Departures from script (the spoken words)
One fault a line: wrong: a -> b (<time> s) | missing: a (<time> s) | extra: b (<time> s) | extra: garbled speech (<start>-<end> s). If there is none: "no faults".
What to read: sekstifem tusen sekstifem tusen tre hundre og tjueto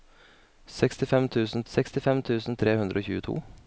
no faults